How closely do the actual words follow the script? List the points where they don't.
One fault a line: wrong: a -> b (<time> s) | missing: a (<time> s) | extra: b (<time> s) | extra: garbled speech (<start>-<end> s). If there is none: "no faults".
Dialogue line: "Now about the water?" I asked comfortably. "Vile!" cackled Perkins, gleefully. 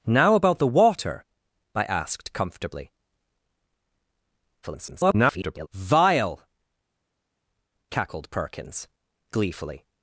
extra: garbled speech (4.6-5.7 s)